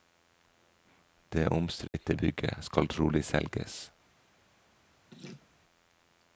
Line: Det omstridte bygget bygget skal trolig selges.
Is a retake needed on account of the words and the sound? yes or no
yes